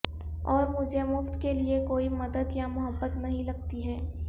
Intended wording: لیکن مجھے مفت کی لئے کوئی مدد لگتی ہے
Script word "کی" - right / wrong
wrong